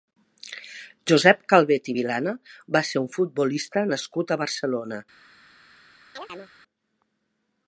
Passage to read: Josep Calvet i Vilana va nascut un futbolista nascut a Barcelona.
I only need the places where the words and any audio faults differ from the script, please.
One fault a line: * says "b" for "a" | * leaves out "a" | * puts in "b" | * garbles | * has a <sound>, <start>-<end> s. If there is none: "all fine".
* says "ser" for "nascut"
* has a chirp, 6.2-6.5 s